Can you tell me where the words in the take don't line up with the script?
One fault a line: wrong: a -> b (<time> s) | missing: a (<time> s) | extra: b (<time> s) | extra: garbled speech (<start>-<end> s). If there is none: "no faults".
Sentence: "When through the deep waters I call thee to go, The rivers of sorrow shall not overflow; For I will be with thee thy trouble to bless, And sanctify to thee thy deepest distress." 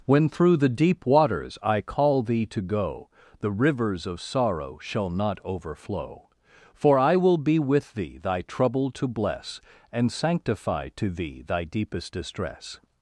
no faults